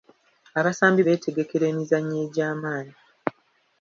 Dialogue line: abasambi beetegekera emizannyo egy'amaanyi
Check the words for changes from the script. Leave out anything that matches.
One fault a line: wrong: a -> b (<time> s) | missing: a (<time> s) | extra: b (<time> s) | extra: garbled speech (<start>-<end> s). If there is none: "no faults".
no faults